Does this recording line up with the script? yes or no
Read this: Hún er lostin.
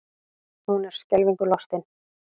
no